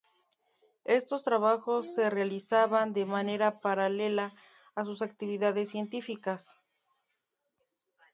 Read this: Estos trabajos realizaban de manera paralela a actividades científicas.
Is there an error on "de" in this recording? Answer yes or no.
no